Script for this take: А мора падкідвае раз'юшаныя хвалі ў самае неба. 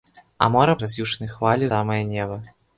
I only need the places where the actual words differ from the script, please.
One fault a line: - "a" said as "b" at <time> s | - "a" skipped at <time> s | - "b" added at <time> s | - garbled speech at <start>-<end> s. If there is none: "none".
- "падкідвае" skipped at 0.8 s
- "ў" skipped at 1.6 s